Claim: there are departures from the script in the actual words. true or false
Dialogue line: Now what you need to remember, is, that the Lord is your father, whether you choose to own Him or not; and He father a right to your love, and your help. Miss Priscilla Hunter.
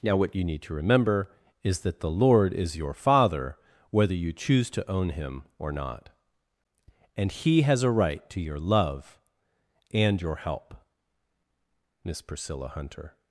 true